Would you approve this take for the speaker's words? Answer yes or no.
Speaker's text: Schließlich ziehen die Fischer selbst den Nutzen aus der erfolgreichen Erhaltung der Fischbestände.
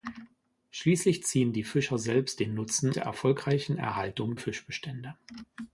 no